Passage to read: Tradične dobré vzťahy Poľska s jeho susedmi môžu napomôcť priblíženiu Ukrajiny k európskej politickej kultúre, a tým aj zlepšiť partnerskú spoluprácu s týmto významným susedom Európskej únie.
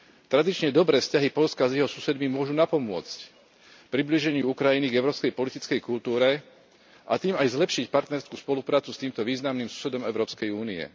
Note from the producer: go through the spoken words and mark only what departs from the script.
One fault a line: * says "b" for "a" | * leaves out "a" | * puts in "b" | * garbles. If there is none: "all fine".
all fine